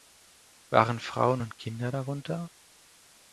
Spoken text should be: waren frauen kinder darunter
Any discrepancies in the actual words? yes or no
yes